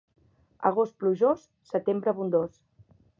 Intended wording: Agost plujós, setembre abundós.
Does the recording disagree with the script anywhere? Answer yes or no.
no